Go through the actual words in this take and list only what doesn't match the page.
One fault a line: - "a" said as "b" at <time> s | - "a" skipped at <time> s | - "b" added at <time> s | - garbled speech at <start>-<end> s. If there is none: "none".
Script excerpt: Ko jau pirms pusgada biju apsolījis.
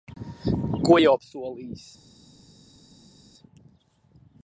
- "pirms pusgada biju" skipped at 1.1 s